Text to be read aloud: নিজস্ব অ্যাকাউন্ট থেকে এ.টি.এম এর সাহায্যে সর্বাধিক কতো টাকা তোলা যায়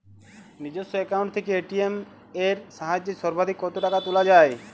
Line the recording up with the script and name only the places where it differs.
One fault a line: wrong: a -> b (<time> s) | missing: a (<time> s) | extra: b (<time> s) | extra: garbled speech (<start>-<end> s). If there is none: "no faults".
no faults